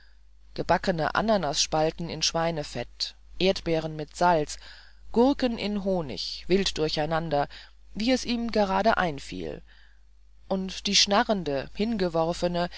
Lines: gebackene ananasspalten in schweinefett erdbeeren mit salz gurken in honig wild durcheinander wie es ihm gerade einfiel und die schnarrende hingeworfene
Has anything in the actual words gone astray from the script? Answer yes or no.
no